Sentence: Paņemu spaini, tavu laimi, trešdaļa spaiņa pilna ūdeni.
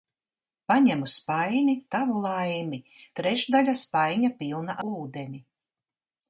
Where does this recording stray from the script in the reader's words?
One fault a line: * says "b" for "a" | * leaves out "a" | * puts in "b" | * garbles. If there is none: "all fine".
all fine